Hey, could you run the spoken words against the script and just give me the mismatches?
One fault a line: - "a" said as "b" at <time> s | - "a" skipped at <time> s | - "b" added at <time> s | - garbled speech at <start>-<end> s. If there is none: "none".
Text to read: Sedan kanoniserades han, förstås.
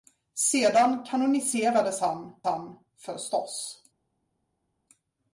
- "han" added at 2.4 s